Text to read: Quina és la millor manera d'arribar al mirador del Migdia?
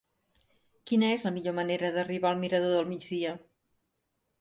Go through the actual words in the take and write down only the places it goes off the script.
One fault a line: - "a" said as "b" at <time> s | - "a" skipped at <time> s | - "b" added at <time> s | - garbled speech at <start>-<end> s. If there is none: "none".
none